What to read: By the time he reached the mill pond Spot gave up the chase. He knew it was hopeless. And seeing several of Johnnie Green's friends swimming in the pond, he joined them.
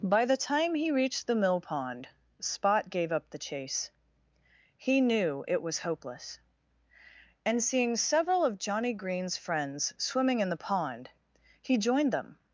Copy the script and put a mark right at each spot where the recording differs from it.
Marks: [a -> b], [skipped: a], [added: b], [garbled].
By the time he reached the mill pond Spot gave up the chase. He knew it was hopeless. And seeing several of Johnnie Green's friends swimming in the pond, he joined them.